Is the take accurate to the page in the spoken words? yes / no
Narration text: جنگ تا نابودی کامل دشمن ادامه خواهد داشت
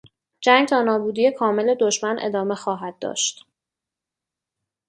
yes